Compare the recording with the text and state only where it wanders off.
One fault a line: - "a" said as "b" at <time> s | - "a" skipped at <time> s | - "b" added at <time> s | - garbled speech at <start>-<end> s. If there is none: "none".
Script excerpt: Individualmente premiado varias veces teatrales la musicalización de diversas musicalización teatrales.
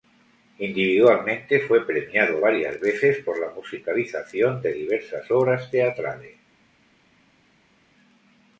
- "fue" added at 1.6 s
- "teatrales" said as "por" at 3.2 s
- "musicalización" said as "obras" at 5.3 s